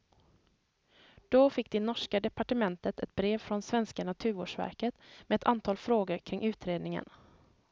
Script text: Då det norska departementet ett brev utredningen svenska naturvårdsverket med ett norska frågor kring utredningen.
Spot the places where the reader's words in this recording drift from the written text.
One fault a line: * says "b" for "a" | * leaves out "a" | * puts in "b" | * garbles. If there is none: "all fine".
* puts in "fick"
* says "från" for "utredningen"
* says "antal" for "norska"